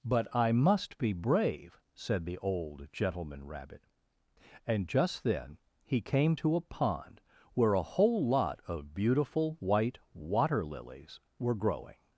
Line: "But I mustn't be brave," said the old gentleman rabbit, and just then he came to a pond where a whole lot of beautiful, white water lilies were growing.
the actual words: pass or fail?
fail